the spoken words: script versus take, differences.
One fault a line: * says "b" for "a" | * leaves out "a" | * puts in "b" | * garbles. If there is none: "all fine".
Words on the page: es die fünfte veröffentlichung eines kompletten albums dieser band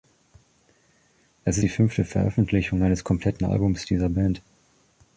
all fine